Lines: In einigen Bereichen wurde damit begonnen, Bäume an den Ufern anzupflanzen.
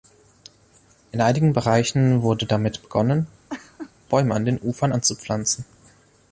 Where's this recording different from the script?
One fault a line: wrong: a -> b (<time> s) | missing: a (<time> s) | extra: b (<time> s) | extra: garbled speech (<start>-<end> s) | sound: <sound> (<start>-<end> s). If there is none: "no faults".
sound: laugh (3.5-3.9 s)